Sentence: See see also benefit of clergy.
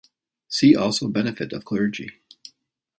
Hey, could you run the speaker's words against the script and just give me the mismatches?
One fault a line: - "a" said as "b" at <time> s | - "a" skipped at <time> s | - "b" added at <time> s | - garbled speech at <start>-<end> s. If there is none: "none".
- "see" skipped at 0.8 s